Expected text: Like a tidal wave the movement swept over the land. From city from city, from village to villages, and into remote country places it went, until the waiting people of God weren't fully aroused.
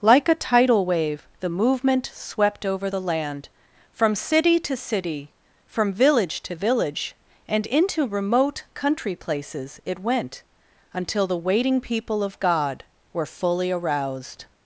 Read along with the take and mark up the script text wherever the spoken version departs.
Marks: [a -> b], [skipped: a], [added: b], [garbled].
Like a tidal wave the movement swept over the land. From city [from -> to] city, from village to [villages, -> village] and into remote country places it went, until the waiting people of God [weren't -> were] fully aroused.